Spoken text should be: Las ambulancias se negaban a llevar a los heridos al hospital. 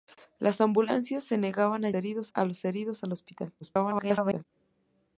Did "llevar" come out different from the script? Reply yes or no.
yes